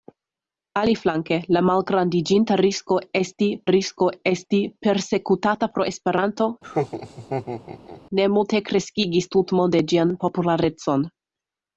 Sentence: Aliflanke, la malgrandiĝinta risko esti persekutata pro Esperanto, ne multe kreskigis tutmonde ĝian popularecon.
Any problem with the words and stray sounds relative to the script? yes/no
yes